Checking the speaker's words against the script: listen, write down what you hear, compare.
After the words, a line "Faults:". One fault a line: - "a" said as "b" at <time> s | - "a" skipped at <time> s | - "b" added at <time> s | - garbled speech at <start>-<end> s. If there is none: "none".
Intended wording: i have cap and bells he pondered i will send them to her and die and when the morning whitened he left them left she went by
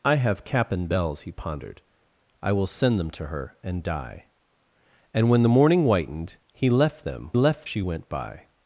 i have cap and bells he pondered i will send them to her and die and when the morning whitened he left them left she went by
Faults:
none